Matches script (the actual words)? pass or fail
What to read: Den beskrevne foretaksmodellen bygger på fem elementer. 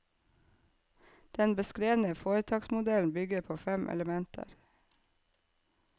pass